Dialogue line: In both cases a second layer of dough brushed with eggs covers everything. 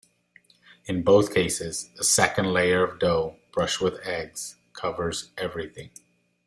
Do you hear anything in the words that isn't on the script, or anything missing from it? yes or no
no